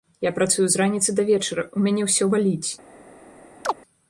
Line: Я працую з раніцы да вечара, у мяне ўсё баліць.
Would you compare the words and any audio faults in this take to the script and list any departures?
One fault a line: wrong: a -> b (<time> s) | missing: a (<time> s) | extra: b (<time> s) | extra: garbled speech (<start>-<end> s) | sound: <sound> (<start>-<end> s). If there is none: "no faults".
sound: chirp (3.6-3.7 s)